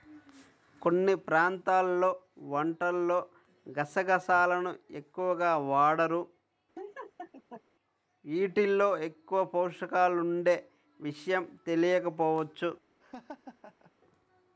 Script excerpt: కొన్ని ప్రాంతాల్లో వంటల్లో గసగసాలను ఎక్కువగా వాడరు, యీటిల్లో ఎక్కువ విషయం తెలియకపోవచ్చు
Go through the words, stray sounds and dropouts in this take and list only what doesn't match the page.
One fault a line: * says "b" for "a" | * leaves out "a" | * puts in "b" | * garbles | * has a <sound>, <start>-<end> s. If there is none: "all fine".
* has a laugh, 6.7-7.6 s
* puts in "పోషకాలుండే"
* has a laugh, 13.0-13.9 s